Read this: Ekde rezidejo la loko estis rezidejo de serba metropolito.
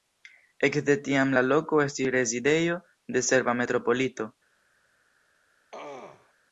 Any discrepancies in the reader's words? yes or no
yes